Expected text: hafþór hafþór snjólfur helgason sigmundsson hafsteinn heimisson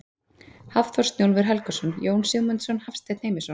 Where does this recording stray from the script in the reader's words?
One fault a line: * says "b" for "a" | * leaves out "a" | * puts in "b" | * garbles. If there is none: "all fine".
* leaves out "hafþór"
* puts in "jón"